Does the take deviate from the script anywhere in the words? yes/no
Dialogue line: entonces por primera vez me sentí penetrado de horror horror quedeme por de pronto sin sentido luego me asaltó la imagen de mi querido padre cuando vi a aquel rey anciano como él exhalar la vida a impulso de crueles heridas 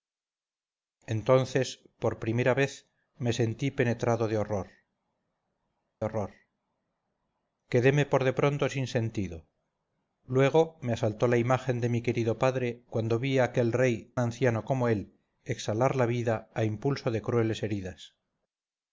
no